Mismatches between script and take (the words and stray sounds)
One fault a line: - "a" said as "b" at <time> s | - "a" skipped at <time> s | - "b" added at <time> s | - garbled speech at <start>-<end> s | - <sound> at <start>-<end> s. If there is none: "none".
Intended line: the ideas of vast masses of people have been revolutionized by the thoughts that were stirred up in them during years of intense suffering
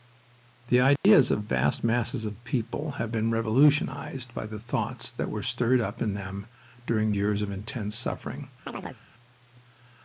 - dropout at 1.0-1.0 s
- chirp at 8.7-9.0 s